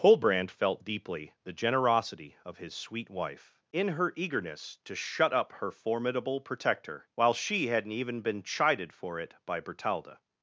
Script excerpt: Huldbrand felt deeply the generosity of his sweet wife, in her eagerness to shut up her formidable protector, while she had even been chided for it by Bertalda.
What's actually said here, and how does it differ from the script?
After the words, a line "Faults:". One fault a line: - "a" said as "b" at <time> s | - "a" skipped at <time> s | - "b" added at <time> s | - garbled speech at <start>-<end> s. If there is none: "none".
Huldbrand felt deeply the generosity of his sweet wife, in her eagerness to shut up her formidable protector, while she hadn't even been chided for it by Bertalda.
Faults:
- "had" said as "hadn't" at 7.7 s